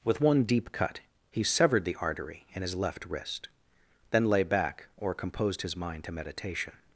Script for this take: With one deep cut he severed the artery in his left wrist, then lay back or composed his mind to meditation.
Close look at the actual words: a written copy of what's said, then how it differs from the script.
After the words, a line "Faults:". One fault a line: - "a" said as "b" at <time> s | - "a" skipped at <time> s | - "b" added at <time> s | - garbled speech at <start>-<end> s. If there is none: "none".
With one deep cut he severed the artery in his left wrist, then lay back or composed his mind to meditation.
Faults:
none